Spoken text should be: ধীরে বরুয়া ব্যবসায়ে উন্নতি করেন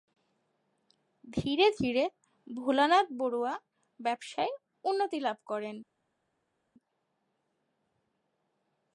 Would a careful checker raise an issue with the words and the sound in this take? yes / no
yes